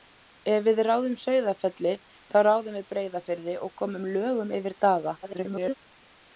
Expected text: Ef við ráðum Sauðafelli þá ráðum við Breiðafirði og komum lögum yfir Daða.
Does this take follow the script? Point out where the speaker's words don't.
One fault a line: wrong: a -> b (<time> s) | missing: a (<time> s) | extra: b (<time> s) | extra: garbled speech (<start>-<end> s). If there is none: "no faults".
extra: garbled speech (5.2-5.7 s)